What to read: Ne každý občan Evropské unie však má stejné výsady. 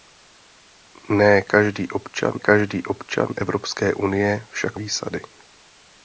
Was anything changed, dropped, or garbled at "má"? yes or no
yes